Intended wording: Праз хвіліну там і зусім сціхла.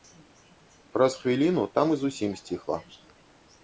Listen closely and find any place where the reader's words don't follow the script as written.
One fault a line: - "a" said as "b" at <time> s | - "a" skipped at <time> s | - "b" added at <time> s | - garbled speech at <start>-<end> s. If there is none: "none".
none